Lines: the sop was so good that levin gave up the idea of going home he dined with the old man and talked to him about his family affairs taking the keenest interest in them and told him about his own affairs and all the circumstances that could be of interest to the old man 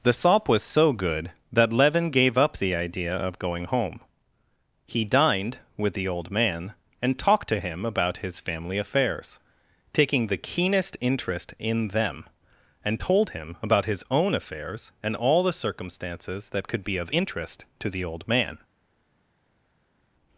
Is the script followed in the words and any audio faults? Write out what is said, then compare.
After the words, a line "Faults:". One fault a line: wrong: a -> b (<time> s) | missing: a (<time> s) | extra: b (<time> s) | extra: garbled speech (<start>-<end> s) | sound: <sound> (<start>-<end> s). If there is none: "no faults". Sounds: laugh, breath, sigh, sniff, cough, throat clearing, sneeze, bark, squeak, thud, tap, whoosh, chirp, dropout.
the sop was so good that levin gave up the idea of going home he dined with the old man and talked to him about his family affairs taking the keenest interest in them and told him about his own affairs and all the circumstances that could be of interest to the old man
Faults:
no faults